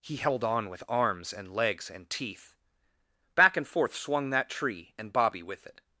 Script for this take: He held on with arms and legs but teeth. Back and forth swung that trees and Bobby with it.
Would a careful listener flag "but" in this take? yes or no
yes